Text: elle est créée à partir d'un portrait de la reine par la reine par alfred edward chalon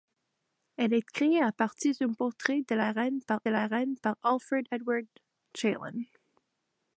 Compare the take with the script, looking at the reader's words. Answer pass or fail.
pass